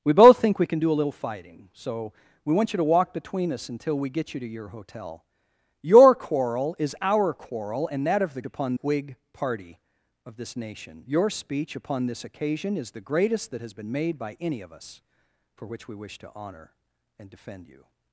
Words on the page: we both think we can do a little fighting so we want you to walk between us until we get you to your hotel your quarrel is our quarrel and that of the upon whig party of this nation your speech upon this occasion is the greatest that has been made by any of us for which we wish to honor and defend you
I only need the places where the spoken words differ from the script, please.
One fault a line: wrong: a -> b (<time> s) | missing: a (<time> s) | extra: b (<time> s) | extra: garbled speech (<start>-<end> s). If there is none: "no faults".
no faults